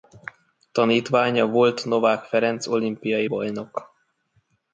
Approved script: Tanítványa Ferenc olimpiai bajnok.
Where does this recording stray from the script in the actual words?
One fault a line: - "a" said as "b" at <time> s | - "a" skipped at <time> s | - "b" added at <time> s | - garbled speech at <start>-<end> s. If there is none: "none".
- "volt Novák" added at 1.4 s